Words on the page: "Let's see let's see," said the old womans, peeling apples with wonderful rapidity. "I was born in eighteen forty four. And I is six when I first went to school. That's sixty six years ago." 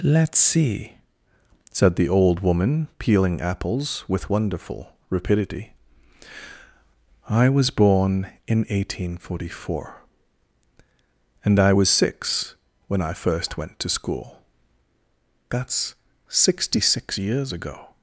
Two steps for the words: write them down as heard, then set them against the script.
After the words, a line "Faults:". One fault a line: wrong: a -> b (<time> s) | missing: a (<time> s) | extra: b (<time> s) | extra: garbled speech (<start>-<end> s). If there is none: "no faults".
"Let's see," said the old woman, peeling apples with wonderful rapidity. "I was born in eighteen forty four. And I was six when I first went to school. That's sixty six years ago."
Faults:
missing: let's see (1.0 s)
wrong: womans -> woman (2.4 s)
wrong: is -> was (11.7 s)